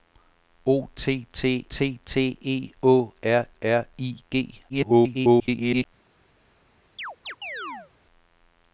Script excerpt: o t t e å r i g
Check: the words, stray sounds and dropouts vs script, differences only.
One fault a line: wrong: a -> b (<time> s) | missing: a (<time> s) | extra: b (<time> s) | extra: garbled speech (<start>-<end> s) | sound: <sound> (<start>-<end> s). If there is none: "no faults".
extra: t t (1.7 s)
extra: r (3.6 s)
extra: garbled speech (4.7-5.9 s)
sound: chirp (7.0-7.9 s)